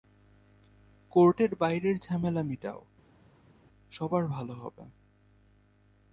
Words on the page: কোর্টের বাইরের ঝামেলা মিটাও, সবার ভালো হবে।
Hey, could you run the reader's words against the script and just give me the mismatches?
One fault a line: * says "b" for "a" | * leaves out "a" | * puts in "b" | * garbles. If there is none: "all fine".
all fine